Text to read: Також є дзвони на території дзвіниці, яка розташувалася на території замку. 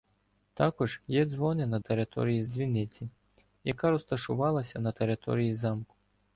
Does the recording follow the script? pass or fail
pass